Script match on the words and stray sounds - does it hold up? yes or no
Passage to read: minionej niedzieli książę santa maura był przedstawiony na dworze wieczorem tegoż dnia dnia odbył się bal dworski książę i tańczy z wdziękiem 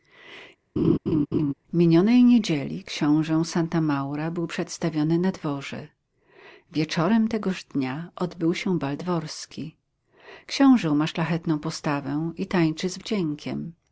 no